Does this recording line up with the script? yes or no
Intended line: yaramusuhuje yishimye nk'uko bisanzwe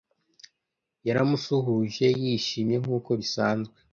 yes